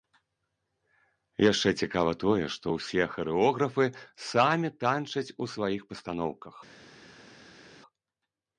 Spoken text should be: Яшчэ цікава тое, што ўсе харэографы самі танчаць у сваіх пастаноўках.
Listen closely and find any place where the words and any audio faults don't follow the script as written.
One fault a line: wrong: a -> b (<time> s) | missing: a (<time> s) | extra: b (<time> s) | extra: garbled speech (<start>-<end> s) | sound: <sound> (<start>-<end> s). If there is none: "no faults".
no faults